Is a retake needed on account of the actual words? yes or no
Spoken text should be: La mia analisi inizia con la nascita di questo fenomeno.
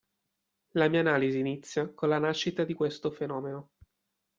no